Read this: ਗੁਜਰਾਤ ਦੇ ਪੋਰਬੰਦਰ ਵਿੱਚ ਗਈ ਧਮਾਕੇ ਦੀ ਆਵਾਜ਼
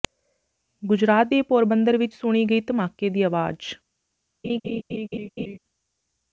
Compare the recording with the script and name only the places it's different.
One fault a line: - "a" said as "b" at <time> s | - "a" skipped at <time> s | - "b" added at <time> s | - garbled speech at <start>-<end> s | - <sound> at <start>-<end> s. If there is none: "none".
- "ਸੁਣੀ" added at 2.1 s
- laugh at 4.4-5.6 s